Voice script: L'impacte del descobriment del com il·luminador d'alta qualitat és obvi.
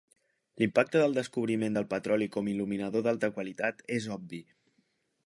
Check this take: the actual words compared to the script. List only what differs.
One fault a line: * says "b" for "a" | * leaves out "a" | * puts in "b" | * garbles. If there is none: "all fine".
* puts in "petroli"